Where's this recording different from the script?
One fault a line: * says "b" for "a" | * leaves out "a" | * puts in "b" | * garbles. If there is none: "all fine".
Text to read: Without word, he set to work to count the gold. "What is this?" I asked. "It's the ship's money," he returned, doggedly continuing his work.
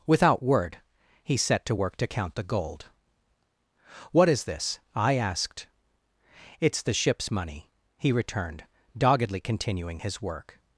all fine